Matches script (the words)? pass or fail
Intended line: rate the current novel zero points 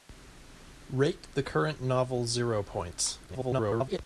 fail